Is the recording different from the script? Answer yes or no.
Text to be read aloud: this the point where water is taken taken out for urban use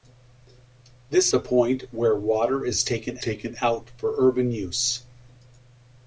no